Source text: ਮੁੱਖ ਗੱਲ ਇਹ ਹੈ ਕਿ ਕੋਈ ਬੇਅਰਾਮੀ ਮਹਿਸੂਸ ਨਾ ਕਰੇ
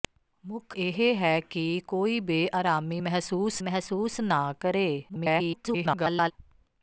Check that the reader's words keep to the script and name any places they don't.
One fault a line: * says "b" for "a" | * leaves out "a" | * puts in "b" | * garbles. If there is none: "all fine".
* leaves out "ਗੱਲ"
* puts in "ਮਹਿਸੂਸ"
* garbles